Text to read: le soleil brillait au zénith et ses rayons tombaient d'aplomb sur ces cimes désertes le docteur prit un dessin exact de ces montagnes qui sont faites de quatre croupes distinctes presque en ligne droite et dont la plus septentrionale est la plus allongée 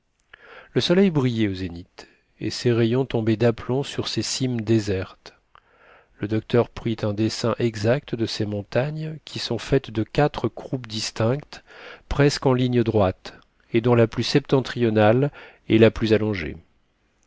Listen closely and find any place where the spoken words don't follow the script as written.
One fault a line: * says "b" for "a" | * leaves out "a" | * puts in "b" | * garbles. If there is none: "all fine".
all fine